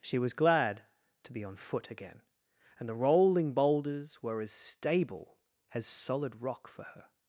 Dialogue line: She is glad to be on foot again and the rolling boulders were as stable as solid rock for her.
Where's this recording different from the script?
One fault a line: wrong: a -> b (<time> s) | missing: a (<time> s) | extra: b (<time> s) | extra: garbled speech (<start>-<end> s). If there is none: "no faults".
wrong: is -> was (0.2 s)